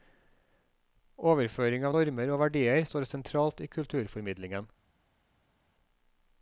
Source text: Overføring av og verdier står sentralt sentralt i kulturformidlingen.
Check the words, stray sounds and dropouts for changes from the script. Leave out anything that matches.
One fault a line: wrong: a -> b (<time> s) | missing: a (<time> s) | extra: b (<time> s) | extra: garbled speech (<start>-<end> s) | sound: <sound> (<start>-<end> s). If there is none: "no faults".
extra: normer (1.9 s)
missing: sentralt (3.6 s)